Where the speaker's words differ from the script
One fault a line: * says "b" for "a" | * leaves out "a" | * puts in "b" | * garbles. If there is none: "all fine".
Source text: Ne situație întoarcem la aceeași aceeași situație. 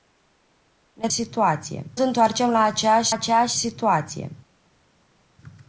all fine